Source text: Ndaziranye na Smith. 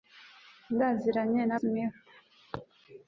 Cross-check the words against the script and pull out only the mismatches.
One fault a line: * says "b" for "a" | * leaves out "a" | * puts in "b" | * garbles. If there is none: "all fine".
all fine